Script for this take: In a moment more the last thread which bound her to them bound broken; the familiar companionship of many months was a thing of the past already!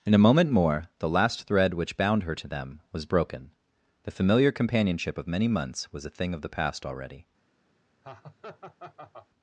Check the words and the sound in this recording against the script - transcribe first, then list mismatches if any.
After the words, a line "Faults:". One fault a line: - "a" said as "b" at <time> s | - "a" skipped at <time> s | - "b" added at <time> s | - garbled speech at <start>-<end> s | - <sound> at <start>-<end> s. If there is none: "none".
In a moment more the last thread which bound her to them was broken; the familiar companionship of many months was a thing of the past already!
Faults:
- "bound" said as "was" at 2.9 s
- laugh at 8.0-9.3 s